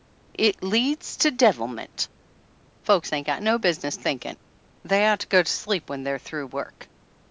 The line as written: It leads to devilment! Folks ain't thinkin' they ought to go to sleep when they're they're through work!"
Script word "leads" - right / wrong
right